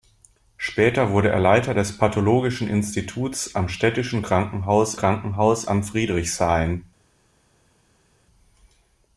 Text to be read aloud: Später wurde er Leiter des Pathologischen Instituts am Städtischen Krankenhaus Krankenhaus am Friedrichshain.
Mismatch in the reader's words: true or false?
false